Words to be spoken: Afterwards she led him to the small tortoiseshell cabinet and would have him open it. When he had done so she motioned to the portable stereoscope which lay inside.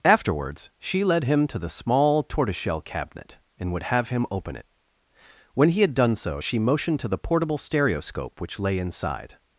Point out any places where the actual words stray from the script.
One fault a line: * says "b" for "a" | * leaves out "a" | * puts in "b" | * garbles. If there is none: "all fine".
all fine